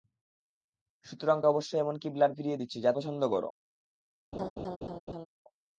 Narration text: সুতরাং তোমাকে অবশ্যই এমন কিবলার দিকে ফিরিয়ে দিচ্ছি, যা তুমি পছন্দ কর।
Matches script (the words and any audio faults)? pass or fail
fail